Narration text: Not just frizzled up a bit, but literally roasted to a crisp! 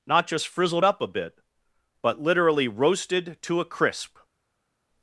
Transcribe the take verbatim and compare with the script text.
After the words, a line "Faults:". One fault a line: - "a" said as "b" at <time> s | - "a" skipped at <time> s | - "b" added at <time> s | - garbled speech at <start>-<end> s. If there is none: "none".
Not just frizzled up a bit, but literally roasted to a crisp!
Faults:
none